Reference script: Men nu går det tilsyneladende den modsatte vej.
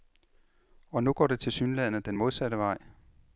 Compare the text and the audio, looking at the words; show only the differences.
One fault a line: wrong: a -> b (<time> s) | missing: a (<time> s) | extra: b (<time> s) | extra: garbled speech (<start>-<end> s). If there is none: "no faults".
wrong: Men -> Og (0.9 s)